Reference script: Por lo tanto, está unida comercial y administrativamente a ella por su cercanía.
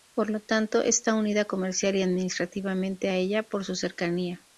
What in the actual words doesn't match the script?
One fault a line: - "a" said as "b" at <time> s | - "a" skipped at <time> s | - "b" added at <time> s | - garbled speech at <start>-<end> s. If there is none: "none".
none